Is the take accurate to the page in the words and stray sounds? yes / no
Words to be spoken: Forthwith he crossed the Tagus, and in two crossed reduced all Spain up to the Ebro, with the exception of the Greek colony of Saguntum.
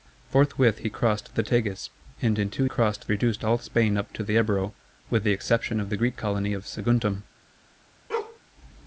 no